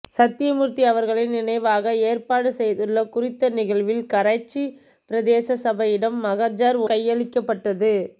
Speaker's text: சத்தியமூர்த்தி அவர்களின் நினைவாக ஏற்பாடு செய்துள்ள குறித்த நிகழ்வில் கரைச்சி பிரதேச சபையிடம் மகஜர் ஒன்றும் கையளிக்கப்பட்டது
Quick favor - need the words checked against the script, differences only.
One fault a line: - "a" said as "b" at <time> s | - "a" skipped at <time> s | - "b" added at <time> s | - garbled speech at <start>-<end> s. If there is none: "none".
- "ஒன்றும்" skipped at 6.8 s